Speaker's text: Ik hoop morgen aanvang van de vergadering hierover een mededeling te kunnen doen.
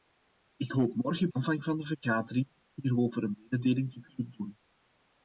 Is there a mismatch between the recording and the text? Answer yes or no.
no